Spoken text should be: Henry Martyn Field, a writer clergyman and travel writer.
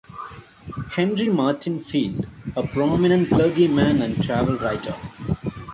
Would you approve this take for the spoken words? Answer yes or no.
no